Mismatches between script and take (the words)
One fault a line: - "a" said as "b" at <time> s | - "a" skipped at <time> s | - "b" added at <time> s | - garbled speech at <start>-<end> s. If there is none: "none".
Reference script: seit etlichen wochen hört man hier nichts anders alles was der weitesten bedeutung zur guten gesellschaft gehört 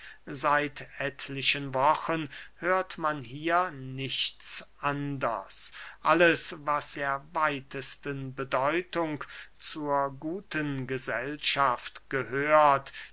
none